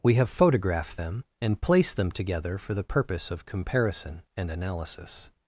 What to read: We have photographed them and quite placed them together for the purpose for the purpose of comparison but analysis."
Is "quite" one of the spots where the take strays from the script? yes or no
yes